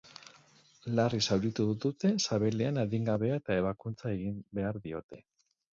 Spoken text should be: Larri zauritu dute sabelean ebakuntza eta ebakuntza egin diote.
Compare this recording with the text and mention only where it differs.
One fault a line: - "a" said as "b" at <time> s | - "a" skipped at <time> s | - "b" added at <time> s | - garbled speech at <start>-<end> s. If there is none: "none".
- "ebakuntza" said as "adingabea" at 2.9 s
- "behar" added at 4.6 s